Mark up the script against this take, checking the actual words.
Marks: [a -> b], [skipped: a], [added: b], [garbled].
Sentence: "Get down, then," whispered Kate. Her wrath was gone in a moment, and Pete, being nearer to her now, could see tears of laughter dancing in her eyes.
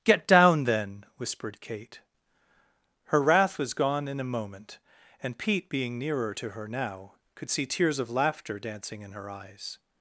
"Get down, then," whispered Kate. Her wrath was gone in a moment, and Pete, being nearer to her now, could see tears of laughter dancing in her eyes.